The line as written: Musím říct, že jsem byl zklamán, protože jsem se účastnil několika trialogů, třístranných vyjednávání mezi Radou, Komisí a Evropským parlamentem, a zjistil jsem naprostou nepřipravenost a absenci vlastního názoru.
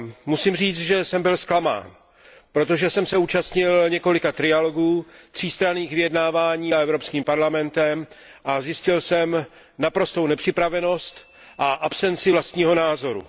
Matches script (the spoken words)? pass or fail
fail